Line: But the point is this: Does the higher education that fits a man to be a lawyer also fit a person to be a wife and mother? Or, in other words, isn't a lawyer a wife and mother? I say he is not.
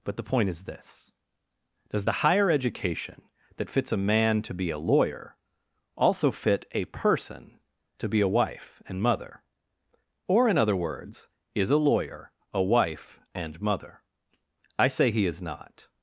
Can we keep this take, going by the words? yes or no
no